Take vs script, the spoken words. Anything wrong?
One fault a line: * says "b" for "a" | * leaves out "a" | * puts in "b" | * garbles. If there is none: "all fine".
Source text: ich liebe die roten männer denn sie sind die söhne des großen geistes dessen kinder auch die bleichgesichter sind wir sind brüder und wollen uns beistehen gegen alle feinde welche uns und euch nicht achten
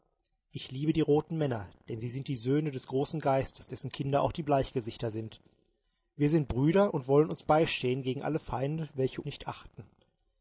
* leaves out "uns und euch"